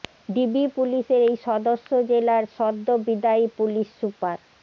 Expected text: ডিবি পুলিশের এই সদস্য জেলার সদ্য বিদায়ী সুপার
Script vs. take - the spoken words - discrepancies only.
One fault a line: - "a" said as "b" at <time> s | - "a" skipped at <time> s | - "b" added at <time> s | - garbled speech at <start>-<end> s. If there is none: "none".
- "পুলিশ" added at 3.6 s